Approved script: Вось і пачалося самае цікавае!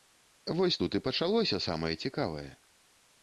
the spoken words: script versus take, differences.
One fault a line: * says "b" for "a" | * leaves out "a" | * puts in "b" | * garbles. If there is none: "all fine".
* puts in "тут"